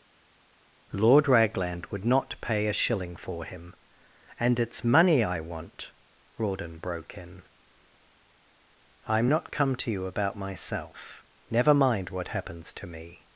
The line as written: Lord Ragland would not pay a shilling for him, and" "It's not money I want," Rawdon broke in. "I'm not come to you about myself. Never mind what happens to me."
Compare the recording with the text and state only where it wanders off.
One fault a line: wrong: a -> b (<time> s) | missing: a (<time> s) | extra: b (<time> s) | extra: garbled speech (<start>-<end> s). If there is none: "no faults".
missing: not (4.8 s)